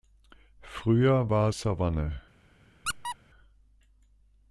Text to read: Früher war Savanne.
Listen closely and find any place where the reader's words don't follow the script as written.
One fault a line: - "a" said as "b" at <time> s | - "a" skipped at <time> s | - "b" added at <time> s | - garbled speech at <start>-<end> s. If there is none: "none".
none